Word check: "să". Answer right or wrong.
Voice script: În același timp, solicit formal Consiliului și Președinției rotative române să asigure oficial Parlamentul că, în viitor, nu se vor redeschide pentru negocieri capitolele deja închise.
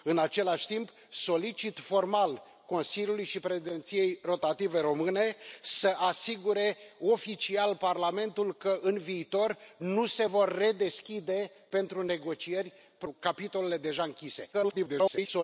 right